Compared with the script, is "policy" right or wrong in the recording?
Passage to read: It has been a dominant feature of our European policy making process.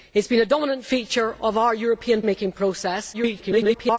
wrong